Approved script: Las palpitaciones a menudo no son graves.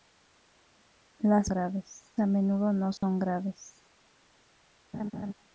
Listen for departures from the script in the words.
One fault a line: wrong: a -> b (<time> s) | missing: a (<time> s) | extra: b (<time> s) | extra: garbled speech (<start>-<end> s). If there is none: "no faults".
wrong: palpitaciones -> graves (1.5 s)